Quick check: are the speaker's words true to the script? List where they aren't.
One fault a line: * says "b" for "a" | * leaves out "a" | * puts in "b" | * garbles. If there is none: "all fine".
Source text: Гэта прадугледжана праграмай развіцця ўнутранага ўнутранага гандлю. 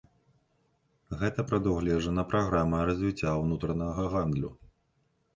* leaves out "ўнутранага"